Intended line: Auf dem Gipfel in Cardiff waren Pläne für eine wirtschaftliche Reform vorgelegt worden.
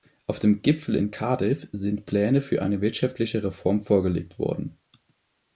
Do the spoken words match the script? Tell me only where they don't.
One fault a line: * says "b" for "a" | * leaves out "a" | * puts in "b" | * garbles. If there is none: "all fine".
* says "sind" for "waren"